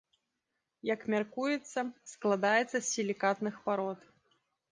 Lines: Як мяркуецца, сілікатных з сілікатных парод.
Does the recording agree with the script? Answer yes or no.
no